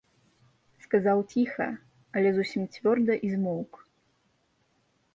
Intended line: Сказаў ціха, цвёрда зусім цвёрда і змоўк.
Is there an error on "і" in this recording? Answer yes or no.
no